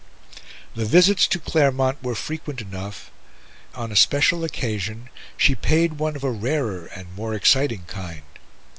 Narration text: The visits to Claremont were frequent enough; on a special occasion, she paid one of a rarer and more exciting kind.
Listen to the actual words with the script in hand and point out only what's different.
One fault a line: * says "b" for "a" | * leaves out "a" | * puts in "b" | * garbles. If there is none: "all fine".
all fine